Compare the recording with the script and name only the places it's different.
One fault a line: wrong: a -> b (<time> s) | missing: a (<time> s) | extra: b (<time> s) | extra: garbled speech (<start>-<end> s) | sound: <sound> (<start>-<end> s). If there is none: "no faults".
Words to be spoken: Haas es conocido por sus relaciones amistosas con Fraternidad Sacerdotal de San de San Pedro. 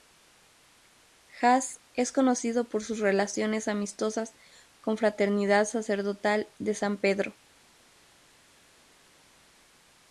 missing: de San (7.0 s)